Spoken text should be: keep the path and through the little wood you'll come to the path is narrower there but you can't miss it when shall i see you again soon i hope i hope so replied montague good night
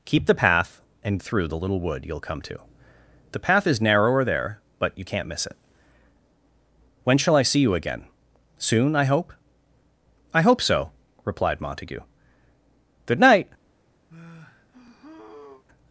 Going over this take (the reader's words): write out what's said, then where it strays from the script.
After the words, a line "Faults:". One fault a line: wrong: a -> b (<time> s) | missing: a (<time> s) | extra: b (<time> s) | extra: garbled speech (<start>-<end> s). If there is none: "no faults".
keep the path and through the little wood you'll come to the path is narrower there but you can't miss it when shall i see you again soon i hope i hope so replied montague good night
Faults:
no faults